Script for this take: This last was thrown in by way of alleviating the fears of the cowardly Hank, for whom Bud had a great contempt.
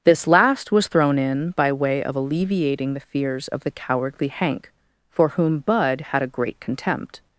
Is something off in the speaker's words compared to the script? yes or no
no